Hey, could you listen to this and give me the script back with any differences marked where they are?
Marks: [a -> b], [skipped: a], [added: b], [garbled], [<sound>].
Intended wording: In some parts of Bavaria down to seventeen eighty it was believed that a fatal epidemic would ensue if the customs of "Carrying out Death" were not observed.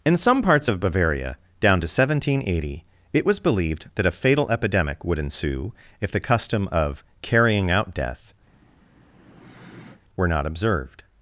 In some parts of Bavaria down to seventeen eighty it was believed that a fatal epidemic would ensue if the [customs -> custom] of "Carrying out Death" [sigh] were not observed.